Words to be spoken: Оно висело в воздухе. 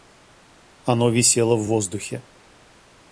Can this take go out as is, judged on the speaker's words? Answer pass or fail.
pass